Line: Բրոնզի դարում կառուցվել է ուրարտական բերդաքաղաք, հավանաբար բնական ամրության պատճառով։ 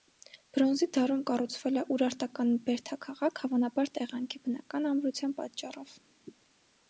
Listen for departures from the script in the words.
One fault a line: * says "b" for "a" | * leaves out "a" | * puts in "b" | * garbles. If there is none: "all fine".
* puts in "տեղանքի"